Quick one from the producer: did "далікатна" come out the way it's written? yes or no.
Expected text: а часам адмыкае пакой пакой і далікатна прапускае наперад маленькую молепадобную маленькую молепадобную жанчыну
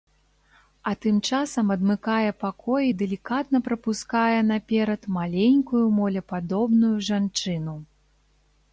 yes